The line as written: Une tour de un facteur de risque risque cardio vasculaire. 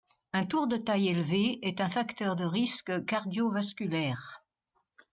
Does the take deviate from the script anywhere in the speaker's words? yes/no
yes